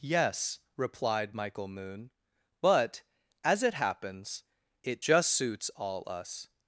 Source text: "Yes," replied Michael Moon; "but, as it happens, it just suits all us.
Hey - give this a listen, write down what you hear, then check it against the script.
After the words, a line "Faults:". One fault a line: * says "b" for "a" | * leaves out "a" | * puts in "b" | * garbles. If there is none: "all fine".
"Yes," replied Michael Moon; "but, as it happens, it just suits all us.
Faults:
all fine